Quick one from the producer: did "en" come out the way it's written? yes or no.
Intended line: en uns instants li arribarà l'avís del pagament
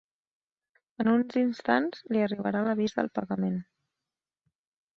yes